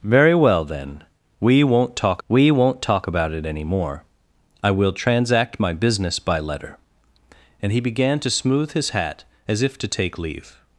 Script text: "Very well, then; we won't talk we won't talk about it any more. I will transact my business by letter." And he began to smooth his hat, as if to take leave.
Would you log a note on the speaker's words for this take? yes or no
no